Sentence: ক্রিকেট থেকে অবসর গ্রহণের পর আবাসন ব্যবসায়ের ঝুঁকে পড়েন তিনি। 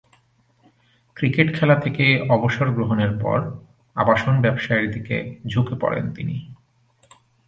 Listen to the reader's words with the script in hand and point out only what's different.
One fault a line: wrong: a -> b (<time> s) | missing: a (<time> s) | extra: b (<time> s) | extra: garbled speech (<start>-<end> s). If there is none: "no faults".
extra: খেলা (1.6 s)
extra: দিকে (4.9 s)